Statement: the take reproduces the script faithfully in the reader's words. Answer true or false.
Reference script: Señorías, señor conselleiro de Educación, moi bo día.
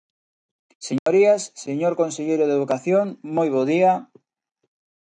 true